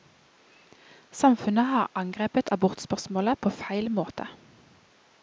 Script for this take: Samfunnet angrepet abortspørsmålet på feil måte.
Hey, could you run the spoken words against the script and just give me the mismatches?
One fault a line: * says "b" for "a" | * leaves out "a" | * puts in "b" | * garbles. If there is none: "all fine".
* puts in "har"